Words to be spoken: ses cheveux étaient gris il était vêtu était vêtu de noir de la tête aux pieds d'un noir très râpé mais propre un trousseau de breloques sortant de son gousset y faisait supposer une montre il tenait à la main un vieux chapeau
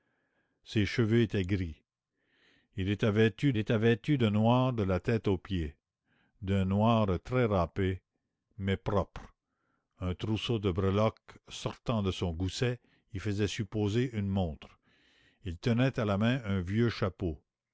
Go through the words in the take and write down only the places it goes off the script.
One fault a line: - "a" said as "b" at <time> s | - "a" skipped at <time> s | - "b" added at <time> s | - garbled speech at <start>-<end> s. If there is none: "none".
none